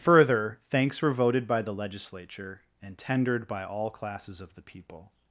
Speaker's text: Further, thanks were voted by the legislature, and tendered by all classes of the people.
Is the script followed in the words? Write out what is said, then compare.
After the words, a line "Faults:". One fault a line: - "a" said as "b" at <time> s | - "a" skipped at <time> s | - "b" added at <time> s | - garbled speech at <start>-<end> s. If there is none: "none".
Further, thanks were voted by the legislature, and tendered by all classes of the people.
Faults:
none